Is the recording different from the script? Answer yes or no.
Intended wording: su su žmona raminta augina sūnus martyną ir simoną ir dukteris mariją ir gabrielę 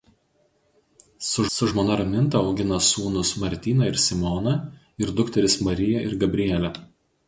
no